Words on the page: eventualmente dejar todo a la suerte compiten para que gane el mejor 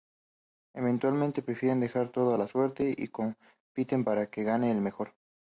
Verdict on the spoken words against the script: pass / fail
fail